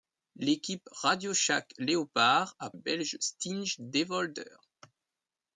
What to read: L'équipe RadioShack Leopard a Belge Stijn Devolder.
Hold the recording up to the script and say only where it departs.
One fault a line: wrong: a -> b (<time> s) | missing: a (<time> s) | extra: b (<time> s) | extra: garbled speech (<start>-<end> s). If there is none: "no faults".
no faults